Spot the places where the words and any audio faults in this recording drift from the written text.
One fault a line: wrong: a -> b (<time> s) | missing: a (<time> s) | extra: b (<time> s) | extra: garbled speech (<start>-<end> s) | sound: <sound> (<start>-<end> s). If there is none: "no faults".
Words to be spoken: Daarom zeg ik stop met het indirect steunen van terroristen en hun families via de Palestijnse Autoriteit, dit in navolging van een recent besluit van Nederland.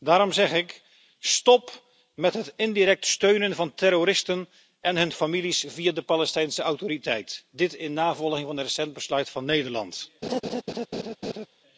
sound: laugh (10.2-11.5 s)